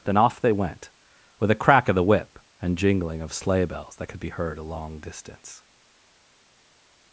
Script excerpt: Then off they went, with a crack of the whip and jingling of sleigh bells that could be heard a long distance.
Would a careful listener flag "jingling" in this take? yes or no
no